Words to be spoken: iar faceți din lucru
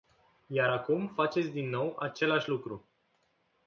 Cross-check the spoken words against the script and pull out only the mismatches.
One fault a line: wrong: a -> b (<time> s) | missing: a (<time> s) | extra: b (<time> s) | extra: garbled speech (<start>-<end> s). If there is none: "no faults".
extra: acum (0.7 s)
extra: nou același (1.7 s)